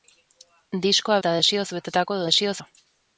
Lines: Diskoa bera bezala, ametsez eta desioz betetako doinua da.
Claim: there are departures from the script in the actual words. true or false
true